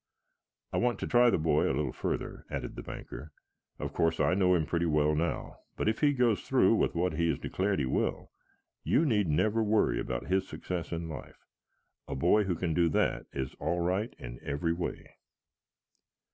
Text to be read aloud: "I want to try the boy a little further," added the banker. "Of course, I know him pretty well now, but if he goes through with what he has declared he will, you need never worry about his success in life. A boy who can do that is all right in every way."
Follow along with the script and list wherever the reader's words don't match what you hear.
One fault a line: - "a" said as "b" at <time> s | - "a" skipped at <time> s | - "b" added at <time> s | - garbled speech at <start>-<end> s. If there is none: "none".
none